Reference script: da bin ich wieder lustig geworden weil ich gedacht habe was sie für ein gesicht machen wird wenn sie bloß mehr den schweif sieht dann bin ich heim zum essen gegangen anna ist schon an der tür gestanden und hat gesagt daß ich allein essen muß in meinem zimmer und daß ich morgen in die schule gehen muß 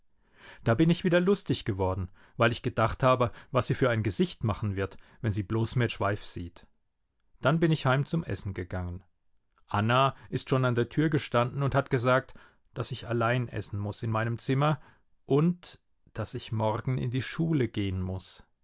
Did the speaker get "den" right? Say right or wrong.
wrong